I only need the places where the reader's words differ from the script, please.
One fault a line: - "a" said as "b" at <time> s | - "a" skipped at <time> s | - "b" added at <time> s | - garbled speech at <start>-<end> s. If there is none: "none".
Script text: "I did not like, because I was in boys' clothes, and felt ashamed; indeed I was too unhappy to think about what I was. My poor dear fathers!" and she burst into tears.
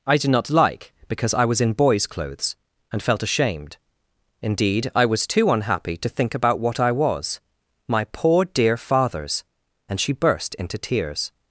none